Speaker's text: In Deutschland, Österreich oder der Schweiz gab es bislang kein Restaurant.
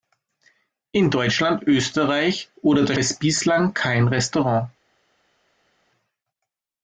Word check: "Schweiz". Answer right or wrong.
wrong